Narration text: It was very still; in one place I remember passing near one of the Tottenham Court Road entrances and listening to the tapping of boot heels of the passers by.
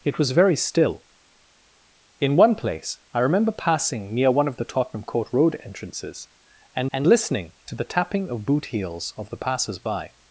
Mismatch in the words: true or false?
true